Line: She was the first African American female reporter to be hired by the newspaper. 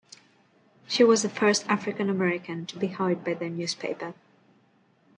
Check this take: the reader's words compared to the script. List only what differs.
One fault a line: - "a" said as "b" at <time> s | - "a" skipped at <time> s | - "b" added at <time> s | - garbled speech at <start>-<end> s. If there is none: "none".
- "female reporter" skipped at 2.7 s